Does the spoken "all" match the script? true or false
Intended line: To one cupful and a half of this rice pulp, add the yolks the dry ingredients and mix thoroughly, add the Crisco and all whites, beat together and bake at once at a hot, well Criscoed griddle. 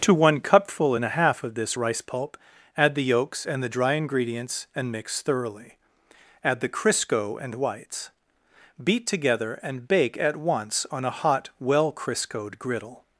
false